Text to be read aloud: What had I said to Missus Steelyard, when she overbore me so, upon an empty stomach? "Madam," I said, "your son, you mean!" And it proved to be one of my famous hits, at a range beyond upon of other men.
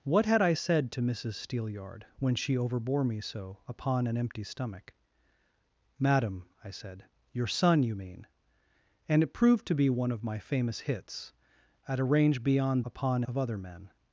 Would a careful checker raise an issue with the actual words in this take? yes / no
no